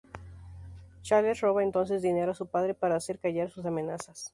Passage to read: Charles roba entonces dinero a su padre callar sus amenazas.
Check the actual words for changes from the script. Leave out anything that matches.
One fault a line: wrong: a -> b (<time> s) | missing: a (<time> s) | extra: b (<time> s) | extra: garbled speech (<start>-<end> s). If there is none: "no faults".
extra: para hacer (2.7 s)